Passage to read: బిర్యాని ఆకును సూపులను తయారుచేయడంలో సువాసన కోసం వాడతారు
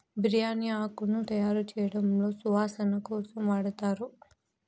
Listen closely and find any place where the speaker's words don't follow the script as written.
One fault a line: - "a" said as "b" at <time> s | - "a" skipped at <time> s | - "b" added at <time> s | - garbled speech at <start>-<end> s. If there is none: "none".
- "సూపులను" skipped at 1.2 s